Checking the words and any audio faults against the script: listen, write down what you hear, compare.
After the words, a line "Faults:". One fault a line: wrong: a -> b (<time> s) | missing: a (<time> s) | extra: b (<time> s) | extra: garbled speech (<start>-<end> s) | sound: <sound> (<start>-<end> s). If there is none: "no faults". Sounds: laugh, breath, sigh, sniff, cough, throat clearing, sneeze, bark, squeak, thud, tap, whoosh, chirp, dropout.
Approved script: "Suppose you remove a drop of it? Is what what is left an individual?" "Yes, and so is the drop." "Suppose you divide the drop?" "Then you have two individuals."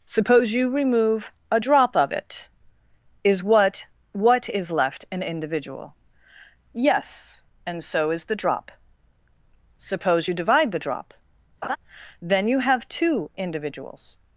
"Suppose you remove a drop of it? Is what what is left an individual?" "Yes, and so is the drop." "Suppose you divide the drop?" "Then you have two individuals."
Faults:
sound: laugh (11.6-11.8 s)